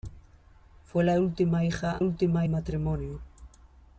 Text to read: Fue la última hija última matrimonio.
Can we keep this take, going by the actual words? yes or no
yes